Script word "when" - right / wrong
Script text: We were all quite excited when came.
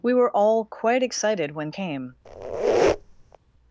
right